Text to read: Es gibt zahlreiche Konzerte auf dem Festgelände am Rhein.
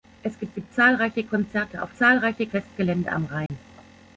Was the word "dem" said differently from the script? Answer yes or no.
yes